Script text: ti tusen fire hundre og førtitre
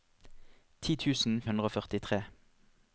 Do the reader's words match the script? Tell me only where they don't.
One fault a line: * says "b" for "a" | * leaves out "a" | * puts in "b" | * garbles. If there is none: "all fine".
* leaves out "fire"